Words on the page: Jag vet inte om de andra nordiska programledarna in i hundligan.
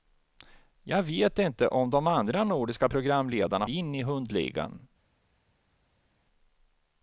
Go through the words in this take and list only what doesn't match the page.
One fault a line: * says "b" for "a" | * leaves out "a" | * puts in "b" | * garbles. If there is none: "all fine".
all fine